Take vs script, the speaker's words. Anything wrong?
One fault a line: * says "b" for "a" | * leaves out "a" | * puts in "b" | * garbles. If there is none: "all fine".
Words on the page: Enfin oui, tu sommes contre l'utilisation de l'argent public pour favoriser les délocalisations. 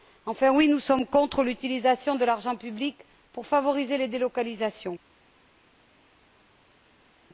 * says "nous" for "tu"